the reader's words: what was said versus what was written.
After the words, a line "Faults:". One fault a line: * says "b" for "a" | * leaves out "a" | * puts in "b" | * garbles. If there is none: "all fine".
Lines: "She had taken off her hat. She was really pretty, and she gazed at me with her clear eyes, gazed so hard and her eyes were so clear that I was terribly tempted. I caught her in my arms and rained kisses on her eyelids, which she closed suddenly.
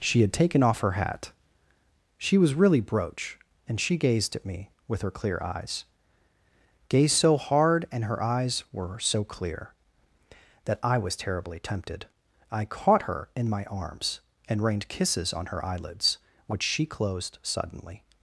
"She had taken off her hat. She was really brooch, and she gazed at me with her clear eyes, gazed so hard and her eyes were so clear that I was terribly tempted. I caught her in my arms and rained kisses on her eyelids, which she closed suddenly.
Faults:
* says "brooch" for "pretty"